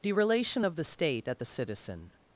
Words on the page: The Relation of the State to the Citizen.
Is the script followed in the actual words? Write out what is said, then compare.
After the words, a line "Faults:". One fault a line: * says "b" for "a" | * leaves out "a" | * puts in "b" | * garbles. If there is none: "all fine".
The Relation of the State at the Citizen.
Faults:
* says "at" for "to"